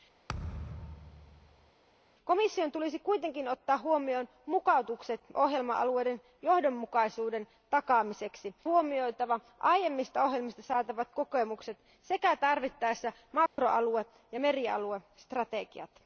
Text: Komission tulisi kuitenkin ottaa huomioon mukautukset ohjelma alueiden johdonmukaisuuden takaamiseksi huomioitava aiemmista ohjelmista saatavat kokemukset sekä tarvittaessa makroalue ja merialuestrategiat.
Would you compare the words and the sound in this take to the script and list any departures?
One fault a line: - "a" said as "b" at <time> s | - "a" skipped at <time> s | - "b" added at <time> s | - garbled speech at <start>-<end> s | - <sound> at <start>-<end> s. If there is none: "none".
- thud at 0.3-1.7 s
- dropout at 13.5-13.6 s